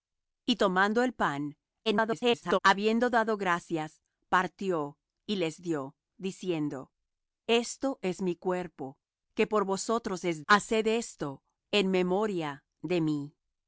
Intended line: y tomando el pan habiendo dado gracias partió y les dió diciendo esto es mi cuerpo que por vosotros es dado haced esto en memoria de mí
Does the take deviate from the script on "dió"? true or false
false